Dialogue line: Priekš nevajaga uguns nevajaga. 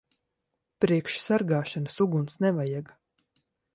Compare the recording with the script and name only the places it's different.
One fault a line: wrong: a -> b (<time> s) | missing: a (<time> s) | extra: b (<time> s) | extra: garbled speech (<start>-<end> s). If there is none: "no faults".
wrong: nevajaga -> sargāšanas (1.2 s)